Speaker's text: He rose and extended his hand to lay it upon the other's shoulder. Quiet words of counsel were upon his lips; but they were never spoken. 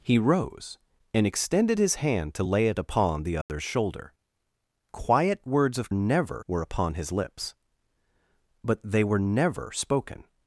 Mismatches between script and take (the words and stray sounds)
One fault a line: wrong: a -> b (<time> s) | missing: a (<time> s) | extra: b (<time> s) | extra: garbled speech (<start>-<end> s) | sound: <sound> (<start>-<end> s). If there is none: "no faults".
sound: dropout (3.4-3.5 s)
wrong: counsel -> never (5.9 s)